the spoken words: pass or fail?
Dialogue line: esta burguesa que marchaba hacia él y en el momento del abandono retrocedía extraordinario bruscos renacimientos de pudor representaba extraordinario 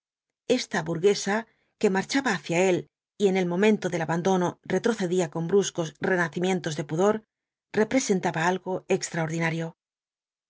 fail